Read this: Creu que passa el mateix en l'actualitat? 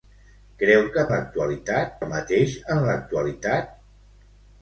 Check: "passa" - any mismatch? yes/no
yes